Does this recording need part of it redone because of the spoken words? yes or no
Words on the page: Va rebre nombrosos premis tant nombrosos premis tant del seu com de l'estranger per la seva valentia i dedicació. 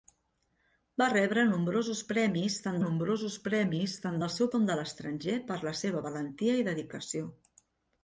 no